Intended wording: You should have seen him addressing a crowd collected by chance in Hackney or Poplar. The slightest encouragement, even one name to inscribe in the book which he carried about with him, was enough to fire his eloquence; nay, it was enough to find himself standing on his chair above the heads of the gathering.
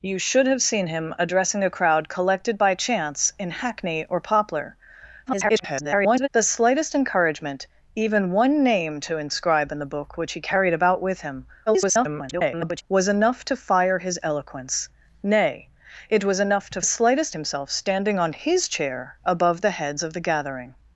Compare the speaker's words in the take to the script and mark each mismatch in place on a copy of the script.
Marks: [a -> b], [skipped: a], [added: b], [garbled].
You should have seen him addressing a crowd collected by chance in Hackney or Poplar. [garbled] The slightest encouragement, even one name to inscribe in the book which he carried about with him, [garbled] was enough to fire his eloquence; nay, it was enough to [find -> slightest] himself standing on his chair above the heads of the gathering.